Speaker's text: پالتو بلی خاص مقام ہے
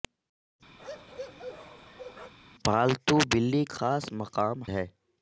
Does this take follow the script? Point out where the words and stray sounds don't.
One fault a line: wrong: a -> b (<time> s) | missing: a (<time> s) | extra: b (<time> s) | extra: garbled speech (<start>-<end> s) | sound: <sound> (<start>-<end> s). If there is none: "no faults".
sound: bark (0.8-2.3 s)